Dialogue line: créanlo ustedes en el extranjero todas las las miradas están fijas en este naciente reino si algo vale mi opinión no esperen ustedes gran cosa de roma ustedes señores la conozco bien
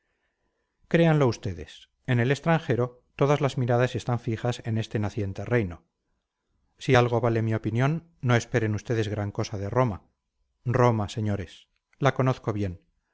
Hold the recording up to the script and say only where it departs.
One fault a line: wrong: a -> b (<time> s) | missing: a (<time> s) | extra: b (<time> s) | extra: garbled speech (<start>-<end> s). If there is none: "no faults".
missing: las (3.6 s)
wrong: ustedes -> roma (10.6 s)